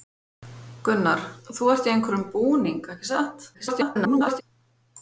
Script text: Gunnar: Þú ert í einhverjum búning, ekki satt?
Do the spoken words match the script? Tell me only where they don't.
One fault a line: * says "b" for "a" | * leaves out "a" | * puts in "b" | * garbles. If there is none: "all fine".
* garbles